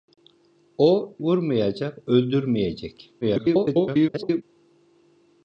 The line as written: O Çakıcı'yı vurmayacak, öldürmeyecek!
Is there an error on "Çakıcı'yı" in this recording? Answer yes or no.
yes